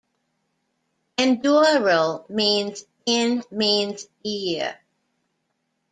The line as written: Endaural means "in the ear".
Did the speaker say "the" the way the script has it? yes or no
no